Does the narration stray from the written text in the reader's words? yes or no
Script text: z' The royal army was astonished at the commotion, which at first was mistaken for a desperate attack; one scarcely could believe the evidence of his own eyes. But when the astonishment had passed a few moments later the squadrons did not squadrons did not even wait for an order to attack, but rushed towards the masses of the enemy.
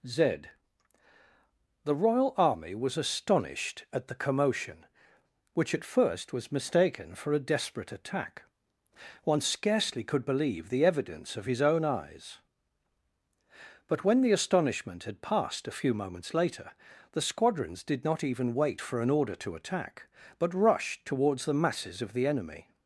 yes